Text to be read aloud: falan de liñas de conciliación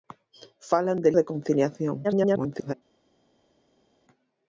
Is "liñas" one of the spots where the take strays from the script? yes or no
yes